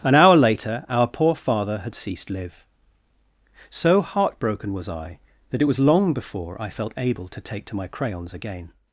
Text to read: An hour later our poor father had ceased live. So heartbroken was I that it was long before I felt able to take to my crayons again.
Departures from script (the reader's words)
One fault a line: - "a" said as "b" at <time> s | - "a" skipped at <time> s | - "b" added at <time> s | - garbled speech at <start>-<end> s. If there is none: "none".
none